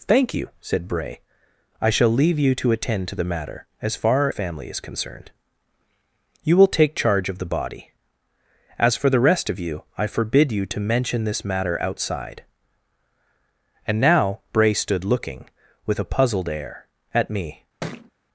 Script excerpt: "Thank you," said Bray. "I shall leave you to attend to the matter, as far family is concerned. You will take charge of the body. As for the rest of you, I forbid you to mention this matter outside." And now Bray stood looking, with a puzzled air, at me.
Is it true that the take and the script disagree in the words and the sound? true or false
true